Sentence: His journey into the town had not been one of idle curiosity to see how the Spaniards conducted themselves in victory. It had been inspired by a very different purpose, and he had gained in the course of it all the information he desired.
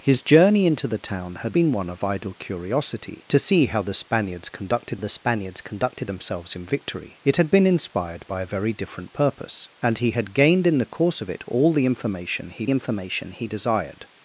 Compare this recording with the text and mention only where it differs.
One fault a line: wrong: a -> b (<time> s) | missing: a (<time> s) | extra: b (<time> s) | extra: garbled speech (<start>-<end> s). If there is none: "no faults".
missing: not (1.6 s)
extra: the Spaniards conducted (5.0 s)
extra: information he (12.7 s)